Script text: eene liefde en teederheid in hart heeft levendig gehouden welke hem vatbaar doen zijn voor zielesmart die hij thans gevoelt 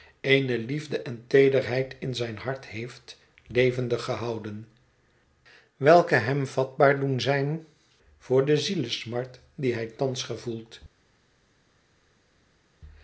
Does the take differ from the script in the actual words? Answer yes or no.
yes